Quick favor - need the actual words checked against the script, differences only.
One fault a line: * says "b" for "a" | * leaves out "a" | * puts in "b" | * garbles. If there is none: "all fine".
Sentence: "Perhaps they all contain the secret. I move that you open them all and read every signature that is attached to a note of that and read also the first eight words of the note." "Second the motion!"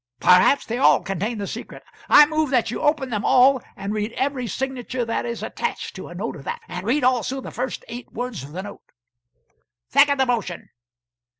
all fine